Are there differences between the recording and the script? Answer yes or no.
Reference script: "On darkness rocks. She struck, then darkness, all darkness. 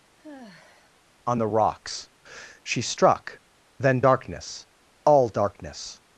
yes